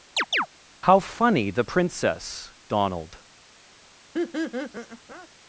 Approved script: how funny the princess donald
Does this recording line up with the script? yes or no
yes